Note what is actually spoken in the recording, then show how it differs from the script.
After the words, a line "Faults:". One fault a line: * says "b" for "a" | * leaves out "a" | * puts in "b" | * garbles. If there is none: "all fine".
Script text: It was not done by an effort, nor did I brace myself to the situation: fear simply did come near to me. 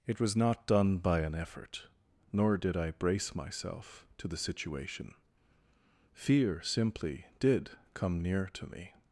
It was not done by an effort, nor did I brace myself to the situation: fear simply did come near to me.
Faults:
all fine